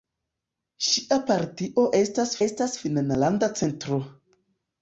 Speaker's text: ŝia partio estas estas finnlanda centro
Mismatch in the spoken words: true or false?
false